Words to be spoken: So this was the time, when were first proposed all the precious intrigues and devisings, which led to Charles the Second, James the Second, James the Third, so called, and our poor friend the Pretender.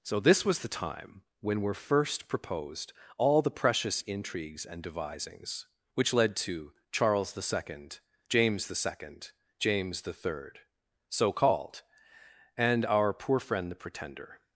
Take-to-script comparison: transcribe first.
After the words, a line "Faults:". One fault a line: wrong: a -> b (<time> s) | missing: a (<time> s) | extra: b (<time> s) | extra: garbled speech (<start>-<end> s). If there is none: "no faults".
So this was the time, when were first proposed all the precious intrigues and devisings, which led to Charles the Second, James the Second, James the Third, so called, and our poor friend the Pretender.
Faults:
no faults